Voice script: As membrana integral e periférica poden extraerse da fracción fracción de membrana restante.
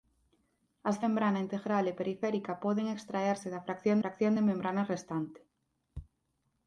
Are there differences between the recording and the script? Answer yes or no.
no